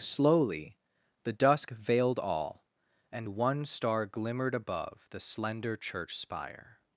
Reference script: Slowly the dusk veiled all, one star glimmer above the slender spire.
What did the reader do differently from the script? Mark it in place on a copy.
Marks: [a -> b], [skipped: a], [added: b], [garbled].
Slowly the dusk veiled all, [added: and] one star [glimmer -> glimmered] above the slender [added: church] spire.